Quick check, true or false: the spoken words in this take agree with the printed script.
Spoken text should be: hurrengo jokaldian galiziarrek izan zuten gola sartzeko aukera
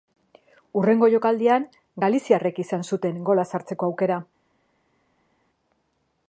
true